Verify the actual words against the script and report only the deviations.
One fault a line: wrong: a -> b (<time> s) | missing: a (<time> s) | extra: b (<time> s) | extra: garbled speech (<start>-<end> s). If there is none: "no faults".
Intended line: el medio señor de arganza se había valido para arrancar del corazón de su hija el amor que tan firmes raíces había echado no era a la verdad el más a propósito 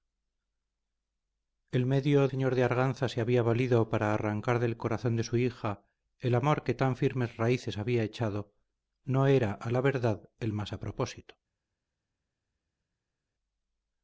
no faults